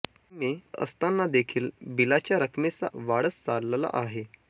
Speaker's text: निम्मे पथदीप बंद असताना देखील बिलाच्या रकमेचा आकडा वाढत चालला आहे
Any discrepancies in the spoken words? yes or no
yes